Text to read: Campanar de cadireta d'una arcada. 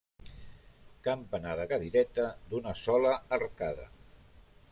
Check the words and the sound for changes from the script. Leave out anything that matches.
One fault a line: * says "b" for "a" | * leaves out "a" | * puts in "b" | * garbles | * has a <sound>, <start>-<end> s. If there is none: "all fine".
* puts in "sola"